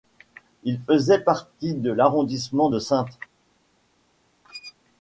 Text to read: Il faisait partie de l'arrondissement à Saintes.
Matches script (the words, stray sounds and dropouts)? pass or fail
fail